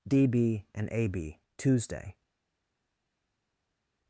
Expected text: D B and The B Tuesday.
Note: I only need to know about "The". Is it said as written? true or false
false